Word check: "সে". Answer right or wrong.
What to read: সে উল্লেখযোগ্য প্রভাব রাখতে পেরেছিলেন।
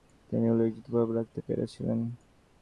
wrong